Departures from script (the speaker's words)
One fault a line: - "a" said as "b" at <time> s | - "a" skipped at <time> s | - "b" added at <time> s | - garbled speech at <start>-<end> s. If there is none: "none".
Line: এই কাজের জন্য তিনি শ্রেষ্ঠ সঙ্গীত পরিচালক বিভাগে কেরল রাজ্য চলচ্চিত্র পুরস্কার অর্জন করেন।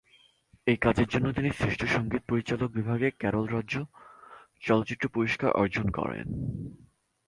none